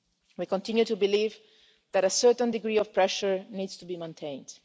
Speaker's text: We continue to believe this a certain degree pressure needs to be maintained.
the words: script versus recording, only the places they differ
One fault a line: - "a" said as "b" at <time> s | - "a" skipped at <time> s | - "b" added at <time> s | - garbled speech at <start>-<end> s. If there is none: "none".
- "this" said as "that" at 1.9 s
- "of" added at 2.8 s